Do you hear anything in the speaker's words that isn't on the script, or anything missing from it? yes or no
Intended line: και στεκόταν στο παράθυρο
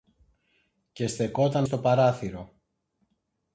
no